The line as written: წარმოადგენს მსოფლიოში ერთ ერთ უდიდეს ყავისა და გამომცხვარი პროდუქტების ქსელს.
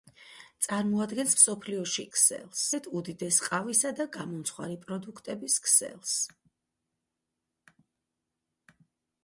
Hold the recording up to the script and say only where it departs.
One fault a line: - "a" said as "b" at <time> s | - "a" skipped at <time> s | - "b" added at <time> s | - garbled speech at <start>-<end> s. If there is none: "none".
- "ერთ" said as "ქსელს" at 2.2 s